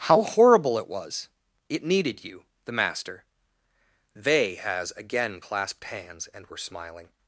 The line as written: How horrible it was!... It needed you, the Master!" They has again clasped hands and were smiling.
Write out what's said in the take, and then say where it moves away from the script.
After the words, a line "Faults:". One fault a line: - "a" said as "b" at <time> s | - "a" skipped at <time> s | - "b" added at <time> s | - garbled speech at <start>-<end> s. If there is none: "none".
How horrible it was!... It needed you, the Master!" They has again clasped hands and were smiling.
Faults:
none